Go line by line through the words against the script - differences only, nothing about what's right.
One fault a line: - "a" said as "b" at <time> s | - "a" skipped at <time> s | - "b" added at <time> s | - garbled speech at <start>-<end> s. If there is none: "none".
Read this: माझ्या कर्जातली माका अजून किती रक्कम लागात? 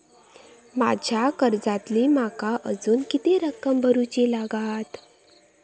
- "भरुची" added at 3.8 s